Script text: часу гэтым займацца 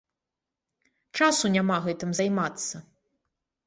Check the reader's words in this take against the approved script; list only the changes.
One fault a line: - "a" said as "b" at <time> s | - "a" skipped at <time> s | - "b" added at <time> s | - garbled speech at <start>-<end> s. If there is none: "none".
- "няма" added at 1.6 s